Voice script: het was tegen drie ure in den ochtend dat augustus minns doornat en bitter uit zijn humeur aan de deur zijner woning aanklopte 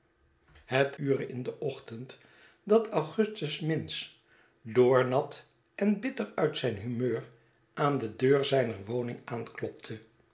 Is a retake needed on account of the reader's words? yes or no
yes